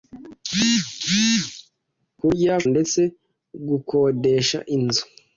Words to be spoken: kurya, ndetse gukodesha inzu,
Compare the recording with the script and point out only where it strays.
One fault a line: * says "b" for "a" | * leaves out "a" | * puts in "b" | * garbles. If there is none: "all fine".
all fine